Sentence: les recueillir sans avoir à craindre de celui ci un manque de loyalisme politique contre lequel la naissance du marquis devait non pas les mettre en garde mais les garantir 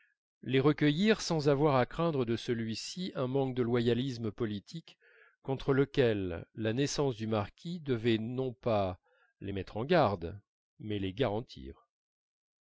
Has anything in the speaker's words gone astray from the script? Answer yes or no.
no